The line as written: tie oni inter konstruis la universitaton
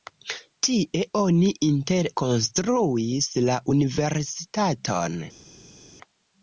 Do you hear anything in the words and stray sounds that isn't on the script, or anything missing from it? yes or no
no